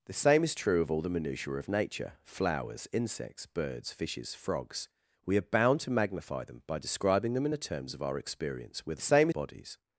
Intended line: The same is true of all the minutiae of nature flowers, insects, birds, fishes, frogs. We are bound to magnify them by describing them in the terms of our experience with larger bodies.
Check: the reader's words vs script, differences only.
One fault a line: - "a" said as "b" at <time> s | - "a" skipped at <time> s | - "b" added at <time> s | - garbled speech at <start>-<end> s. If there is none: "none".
- "larger" said as "same" at 9.0 s